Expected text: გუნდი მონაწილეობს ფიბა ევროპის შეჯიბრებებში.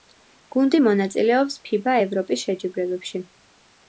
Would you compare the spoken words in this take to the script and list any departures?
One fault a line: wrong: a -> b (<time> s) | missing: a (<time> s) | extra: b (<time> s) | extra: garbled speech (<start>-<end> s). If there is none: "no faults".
no faults